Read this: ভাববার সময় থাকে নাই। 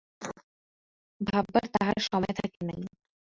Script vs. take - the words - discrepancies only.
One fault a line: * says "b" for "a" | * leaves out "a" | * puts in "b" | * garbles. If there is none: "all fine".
* puts in "তাহার"